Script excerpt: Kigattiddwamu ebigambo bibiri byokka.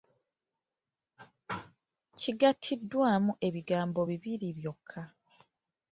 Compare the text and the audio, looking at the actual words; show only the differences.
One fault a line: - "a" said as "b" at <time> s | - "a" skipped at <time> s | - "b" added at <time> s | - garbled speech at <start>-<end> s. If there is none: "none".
none